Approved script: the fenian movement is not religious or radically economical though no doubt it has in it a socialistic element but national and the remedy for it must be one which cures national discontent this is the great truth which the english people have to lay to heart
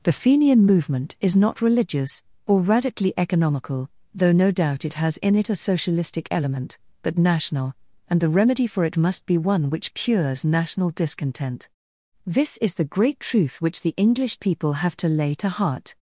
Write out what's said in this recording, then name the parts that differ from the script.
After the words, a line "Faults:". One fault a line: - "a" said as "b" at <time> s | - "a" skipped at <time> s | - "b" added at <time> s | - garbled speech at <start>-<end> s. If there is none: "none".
the fenian movement is not religious or radically economical though no doubt it has in it a socialistic element but national and the remedy for it must be one which cures national discontent this is the great truth which the english people have to lay to heart
Faults:
none